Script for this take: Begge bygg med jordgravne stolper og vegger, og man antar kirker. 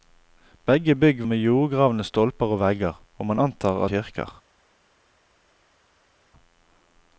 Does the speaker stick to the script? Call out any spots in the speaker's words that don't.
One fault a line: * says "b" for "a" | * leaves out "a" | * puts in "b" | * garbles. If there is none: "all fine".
all fine